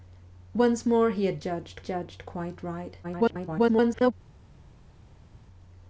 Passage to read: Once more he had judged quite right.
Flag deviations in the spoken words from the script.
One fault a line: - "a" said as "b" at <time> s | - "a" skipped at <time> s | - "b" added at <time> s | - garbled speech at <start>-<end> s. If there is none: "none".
- "judged" added at 1.8 s
- garbled speech at 3.0-4.1 s